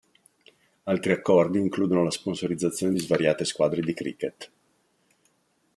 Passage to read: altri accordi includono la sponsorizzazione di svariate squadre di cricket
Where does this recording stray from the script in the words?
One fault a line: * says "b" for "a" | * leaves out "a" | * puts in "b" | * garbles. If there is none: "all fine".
all fine